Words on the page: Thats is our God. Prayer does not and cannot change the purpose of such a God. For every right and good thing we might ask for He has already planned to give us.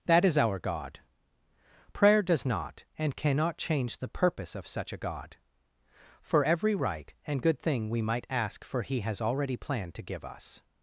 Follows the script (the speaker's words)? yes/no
no